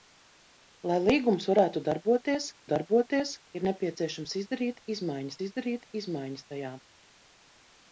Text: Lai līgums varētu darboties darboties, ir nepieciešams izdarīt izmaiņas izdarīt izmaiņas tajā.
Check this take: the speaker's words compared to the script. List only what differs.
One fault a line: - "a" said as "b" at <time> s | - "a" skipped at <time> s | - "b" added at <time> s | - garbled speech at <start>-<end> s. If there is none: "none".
none